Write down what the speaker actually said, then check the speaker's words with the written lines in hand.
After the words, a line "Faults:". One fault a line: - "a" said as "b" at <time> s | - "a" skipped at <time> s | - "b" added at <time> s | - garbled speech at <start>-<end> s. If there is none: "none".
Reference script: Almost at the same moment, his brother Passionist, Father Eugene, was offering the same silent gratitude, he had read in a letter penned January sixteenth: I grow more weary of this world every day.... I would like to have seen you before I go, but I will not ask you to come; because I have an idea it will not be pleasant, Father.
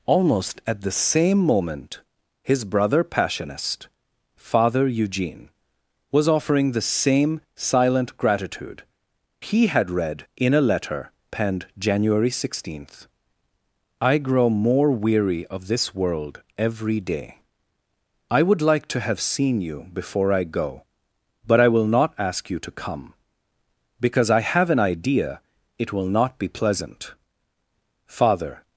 Almost at the same moment, his brother Passionist, Father Eugene, was offering the same silent gratitude, he had read in a letter penned January sixteenth: I grow more weary of this world every day.... I would like to have seen you before I go, but I will not ask you to come; because I have an idea it will not be pleasant, Father.
Faults:
none